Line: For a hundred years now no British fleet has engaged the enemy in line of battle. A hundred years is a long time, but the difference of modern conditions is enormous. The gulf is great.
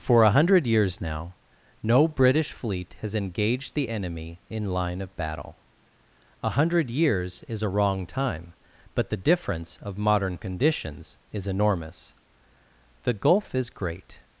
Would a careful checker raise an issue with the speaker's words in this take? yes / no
yes